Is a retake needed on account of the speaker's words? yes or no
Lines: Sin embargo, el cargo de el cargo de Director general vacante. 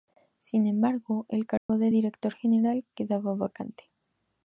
yes